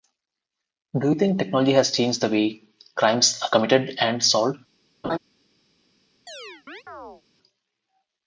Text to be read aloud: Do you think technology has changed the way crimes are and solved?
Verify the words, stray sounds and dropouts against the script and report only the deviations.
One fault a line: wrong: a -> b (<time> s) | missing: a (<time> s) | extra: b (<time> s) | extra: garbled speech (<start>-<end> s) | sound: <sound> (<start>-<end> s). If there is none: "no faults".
extra: committed (3.5 s)
sound: laugh (5.0-5.2 s)
sound: chirp (6.3-7.2 s)